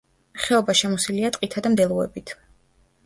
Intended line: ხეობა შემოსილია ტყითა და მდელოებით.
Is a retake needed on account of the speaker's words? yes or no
no